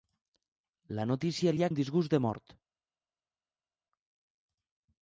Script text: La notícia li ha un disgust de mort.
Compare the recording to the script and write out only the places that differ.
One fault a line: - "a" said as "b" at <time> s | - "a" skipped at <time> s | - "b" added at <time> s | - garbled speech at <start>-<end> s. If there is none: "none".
none